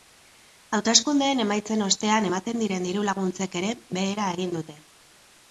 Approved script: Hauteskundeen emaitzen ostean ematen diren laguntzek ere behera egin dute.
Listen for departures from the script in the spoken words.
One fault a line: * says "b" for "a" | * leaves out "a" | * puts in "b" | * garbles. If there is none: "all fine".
* puts in "diru"